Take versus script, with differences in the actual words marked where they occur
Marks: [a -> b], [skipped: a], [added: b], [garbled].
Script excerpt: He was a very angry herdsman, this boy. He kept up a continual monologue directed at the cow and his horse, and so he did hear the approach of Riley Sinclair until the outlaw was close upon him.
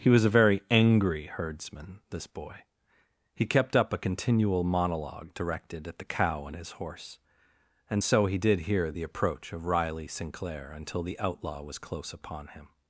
He was a very angry herdsman, this boy. He kept up a continual monologue directed at the cow and his horse, and so he did hear the approach of Riley Sinclair until the outlaw was close upon him.